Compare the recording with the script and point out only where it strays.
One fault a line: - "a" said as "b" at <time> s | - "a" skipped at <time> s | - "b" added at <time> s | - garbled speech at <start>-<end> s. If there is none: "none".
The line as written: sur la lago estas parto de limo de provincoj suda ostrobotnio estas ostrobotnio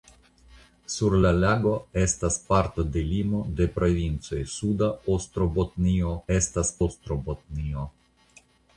none